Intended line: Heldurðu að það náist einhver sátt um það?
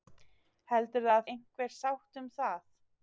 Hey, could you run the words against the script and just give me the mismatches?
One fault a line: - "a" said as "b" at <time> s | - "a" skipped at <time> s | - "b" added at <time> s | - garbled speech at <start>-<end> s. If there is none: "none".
- "það náist" skipped at 1.3 s